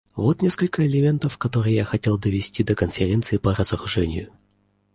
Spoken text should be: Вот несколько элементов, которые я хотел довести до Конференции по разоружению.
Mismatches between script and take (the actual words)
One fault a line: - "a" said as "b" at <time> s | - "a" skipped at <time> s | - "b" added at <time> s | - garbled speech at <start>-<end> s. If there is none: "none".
none